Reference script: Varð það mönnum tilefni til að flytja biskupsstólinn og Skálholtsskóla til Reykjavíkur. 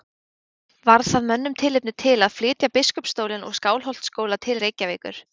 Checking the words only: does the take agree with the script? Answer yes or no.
yes